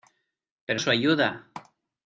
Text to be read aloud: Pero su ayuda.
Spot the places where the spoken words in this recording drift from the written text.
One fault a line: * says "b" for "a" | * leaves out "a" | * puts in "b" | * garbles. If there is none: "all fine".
all fine